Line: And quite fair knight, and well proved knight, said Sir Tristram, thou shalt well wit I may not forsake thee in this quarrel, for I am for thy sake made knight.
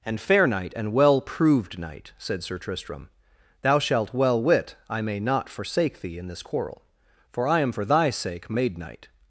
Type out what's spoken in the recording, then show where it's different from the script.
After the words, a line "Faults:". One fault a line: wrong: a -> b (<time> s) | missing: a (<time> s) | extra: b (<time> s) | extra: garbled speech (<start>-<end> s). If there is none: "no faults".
And fair knight, and well proved knight, said Sir Tristram, thou shalt well wit I may not forsake thee in this quarrel, for I am for thy sake made knight.
Faults:
missing: quite (0.2 s)